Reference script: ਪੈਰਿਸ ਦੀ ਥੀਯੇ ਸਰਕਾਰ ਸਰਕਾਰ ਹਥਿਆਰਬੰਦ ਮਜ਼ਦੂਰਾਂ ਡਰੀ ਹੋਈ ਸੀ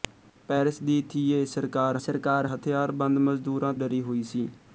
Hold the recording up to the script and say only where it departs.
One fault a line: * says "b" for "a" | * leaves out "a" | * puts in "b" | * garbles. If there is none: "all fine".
all fine